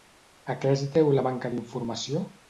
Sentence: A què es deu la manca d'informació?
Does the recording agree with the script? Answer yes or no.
yes